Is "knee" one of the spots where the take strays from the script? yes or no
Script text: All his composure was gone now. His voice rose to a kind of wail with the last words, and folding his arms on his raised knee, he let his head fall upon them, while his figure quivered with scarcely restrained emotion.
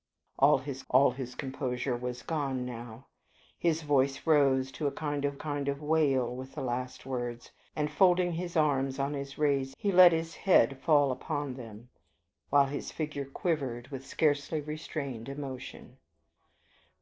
yes